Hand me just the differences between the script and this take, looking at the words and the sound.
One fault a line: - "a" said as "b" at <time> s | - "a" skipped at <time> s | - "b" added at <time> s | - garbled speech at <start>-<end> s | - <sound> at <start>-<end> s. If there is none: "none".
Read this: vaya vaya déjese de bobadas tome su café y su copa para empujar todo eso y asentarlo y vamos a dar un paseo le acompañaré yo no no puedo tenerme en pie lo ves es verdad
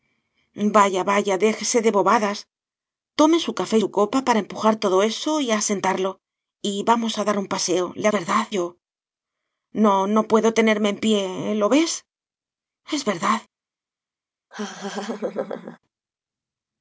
- "y" skipped at 3.8 s
- "acompañaré" said as "verdad" at 8.2 s
- laugh at 14.5-15.8 s